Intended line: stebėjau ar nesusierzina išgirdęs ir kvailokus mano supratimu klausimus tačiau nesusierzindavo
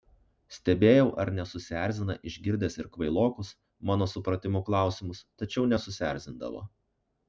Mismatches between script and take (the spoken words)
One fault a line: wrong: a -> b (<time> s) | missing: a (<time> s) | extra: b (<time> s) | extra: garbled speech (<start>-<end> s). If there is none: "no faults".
no faults